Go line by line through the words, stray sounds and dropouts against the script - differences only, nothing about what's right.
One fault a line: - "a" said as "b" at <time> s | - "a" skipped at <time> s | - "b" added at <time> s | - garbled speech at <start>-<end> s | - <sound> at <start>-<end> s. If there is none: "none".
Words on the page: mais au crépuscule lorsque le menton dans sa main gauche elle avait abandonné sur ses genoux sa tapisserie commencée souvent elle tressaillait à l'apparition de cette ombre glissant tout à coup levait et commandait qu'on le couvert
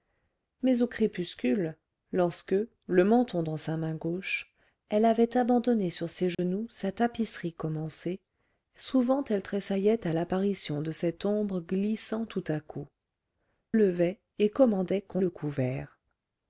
- dropout at 6.3-6.4 s